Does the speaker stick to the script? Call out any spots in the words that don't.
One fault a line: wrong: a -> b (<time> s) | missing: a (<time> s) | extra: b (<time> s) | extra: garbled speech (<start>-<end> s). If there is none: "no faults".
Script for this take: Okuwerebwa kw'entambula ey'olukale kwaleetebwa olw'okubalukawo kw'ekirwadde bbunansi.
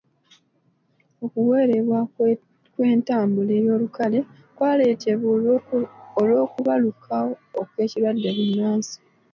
no faults